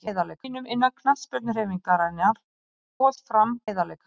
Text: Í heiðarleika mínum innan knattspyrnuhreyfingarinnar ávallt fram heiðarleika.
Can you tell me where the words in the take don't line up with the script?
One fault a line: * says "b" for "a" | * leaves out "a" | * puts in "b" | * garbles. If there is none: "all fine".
all fine